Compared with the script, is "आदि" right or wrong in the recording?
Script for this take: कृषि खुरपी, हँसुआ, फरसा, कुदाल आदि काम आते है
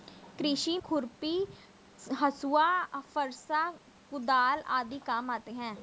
right